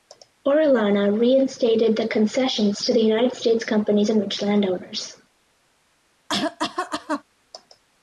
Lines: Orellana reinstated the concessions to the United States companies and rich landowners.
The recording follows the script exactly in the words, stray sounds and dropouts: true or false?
false